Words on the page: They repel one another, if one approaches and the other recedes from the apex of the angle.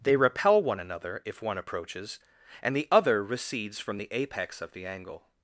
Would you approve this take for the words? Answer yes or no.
yes